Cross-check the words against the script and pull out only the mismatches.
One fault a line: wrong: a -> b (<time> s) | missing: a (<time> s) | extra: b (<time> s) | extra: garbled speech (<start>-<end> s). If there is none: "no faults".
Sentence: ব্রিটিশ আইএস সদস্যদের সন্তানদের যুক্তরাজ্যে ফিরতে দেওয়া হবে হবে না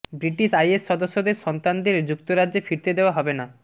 missing: হবে (3.3 s)